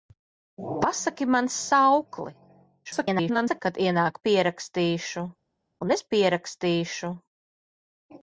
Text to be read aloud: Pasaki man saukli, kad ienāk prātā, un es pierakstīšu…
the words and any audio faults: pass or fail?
fail